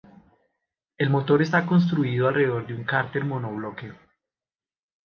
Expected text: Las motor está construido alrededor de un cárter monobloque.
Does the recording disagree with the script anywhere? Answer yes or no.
yes